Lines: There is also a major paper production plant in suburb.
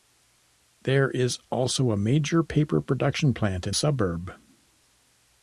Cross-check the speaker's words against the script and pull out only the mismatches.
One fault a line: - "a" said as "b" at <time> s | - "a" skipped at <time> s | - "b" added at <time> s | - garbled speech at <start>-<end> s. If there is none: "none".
none